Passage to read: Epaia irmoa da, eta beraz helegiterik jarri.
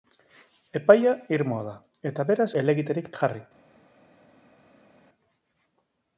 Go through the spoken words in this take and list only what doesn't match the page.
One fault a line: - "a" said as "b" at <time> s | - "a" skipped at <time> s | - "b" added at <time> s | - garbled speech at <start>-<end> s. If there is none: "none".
none